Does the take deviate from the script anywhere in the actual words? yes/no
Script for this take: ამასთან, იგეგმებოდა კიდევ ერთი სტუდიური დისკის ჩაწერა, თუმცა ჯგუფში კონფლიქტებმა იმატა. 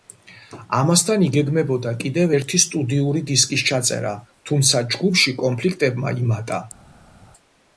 no